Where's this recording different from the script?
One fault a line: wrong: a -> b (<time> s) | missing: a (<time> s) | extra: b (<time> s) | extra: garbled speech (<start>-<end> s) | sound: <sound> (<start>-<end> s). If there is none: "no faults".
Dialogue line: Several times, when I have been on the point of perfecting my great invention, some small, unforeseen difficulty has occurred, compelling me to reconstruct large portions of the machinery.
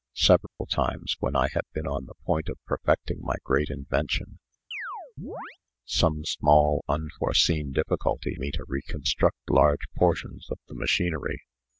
sound: dropout (0.5-0.6 s)
sound: chirp (4.7-5.6 s)
missing: has occurred compelling (8.4 s)